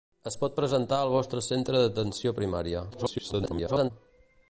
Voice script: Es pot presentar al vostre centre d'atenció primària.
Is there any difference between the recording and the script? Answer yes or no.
yes